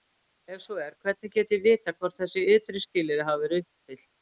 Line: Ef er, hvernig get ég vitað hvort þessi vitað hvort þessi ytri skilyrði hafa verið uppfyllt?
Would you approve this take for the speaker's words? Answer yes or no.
no